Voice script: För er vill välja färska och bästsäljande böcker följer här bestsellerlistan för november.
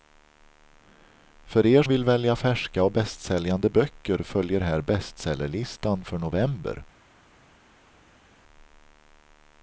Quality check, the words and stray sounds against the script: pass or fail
pass